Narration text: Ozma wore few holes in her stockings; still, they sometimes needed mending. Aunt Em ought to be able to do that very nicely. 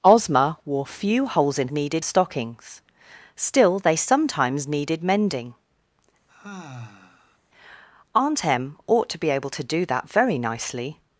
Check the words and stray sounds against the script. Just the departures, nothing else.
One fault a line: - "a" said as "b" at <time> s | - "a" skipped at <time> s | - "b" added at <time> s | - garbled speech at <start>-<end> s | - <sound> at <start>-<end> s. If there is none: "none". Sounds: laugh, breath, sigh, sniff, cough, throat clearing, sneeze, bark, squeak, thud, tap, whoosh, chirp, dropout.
- "her" said as "needed" at 1.7 s
- sigh at 6.3-7.4 s